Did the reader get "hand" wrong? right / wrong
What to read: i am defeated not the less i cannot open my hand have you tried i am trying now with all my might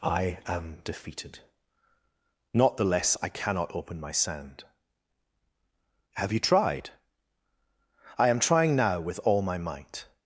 wrong